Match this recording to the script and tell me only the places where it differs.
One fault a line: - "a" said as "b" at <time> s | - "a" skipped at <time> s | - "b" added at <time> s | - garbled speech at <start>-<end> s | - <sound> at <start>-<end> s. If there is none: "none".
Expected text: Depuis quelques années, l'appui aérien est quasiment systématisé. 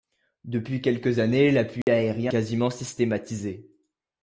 - dropout at 1.8-1.9 s
- "est" skipped at 2.3 s